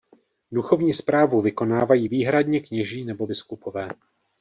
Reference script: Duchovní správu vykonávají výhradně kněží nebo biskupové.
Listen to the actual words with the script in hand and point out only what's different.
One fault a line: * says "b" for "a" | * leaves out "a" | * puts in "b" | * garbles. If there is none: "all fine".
all fine